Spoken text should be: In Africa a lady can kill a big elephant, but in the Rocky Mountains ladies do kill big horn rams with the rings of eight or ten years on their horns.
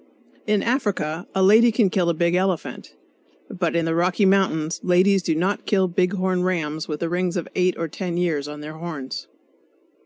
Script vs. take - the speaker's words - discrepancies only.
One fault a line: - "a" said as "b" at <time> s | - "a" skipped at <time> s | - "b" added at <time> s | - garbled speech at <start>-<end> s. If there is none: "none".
- "not" added at 5.3 s